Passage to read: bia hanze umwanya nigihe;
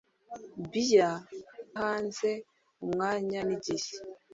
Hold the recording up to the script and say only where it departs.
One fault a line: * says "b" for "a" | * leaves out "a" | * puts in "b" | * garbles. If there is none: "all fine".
all fine